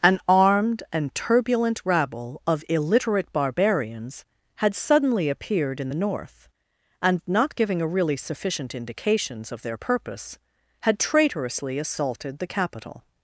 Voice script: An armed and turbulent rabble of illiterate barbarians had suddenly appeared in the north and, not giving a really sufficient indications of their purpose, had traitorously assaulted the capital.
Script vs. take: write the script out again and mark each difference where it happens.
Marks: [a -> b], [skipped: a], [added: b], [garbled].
An armed and turbulent rabble of illiterate barbarians had suddenly appeared in the north and, not giving a really sufficient indications of their purpose, had traitorously assaulted the capital.